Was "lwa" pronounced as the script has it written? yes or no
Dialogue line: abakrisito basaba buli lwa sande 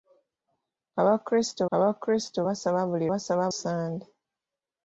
no